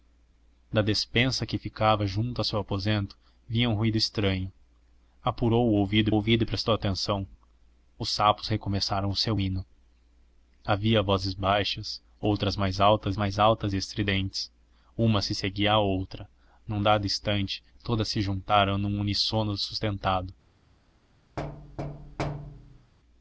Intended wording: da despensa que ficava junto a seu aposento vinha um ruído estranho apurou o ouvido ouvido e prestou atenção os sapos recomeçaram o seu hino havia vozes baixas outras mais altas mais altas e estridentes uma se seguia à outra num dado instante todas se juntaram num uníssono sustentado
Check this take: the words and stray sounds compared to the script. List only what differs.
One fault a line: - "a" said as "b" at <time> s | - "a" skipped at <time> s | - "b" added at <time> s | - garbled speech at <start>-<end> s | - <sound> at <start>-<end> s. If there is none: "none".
- thud at 21.4-22.9 s